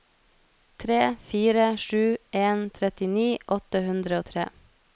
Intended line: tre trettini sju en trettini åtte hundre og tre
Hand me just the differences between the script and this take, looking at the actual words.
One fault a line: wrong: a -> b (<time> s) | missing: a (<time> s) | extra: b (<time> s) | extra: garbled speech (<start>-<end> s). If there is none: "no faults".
wrong: trettini -> fire (1.3 s)